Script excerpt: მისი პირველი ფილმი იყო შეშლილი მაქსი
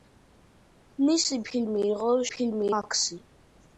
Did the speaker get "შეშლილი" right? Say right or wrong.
wrong